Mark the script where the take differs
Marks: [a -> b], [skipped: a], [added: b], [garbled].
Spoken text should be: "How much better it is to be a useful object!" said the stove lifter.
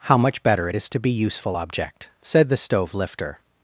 "How much better it is to be [skipped: a] useful object!" said the stove lifter.